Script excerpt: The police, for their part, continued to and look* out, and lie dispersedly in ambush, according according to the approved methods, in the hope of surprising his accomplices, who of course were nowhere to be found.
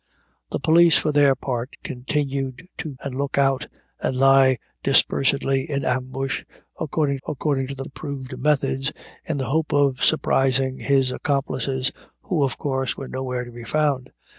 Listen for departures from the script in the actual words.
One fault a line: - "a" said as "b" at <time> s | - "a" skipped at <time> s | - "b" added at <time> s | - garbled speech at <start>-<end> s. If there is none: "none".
none